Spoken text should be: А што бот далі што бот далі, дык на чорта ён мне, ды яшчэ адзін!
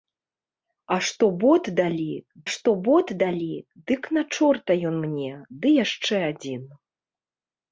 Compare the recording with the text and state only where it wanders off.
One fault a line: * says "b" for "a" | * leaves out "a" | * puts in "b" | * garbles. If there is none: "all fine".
all fine